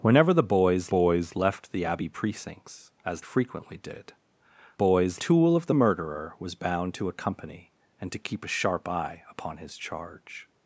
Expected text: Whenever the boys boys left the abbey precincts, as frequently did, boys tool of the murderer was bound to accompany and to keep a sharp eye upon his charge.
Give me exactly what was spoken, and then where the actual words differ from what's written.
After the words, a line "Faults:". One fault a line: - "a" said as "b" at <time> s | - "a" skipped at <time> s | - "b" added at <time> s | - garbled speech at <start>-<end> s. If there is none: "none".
Whenever the boys boys left the abbey precincts, as frequently did, boys tool of the murderer was bound to accompany and to keep a sharp eye upon his charge.
Faults:
none